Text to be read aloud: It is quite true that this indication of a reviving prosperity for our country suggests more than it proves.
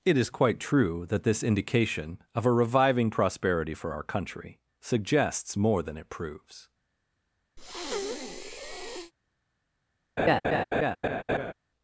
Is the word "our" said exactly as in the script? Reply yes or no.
yes